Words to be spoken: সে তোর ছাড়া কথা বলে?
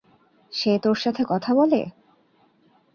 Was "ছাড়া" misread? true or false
true